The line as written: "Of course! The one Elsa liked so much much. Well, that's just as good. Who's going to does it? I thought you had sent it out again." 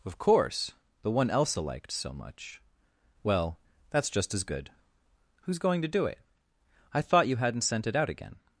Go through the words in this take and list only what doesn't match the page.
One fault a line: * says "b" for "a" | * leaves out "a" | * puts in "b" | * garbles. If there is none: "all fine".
* leaves out "much"
* says "do" for "does"
* says "hadn't" for "had"